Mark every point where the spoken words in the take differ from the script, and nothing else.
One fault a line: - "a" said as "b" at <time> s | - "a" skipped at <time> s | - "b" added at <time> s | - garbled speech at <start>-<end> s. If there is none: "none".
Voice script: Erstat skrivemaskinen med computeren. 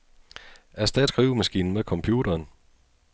none